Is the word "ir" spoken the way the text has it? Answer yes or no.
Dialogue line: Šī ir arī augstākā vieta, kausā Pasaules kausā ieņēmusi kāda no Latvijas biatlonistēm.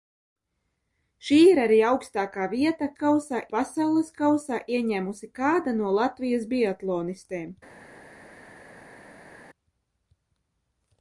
yes